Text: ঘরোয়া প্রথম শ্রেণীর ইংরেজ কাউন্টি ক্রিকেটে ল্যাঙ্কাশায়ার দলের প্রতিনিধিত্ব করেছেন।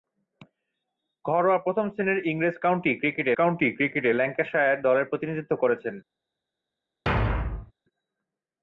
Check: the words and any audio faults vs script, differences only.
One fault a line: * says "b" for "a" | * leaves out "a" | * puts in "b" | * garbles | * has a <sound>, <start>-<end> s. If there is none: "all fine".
* puts in "কাউন্টি ক্রিকেটে"
* has a thud, 7.1-7.7 s